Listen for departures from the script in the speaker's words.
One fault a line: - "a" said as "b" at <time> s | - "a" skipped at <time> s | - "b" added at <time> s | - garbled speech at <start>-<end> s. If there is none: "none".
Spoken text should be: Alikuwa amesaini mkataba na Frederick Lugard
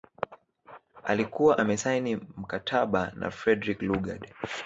none